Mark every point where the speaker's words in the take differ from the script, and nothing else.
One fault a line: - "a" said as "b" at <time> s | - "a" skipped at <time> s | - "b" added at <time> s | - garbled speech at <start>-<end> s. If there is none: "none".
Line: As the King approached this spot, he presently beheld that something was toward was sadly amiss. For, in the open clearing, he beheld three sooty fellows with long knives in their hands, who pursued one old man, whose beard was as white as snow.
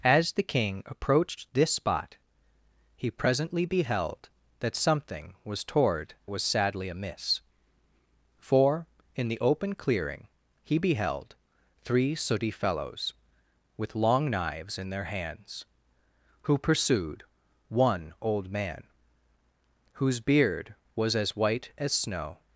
none